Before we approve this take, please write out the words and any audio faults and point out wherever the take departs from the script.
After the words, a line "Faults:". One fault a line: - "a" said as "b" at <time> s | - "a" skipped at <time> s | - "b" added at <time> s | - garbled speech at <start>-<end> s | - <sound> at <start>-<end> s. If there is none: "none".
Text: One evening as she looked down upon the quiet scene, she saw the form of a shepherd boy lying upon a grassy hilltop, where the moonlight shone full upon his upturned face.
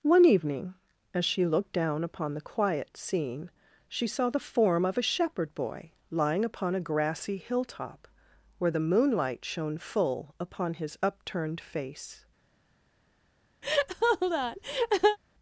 One evening as she looked down upon the quiet scene, she saw the form of a shepherd boy lying upon a grassy hilltop, where the moonlight shone full upon his upturned face.
Faults:
- laugh at 13.6-15.2 s